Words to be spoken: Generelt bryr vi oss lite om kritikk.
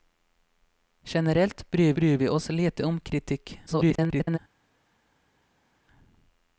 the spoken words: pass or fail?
fail